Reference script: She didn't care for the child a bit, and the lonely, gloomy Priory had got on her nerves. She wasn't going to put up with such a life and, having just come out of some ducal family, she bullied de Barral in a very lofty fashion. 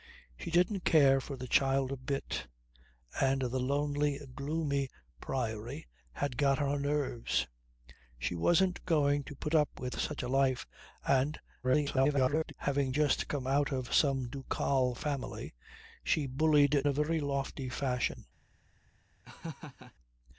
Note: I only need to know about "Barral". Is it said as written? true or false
false